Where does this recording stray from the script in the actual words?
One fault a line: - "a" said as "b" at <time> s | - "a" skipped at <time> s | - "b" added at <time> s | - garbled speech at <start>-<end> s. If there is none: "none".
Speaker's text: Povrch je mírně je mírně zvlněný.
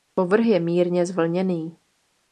- "je mírně" skipped at 1.0 s